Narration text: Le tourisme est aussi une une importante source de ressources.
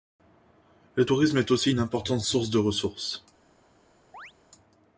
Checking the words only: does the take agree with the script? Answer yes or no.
no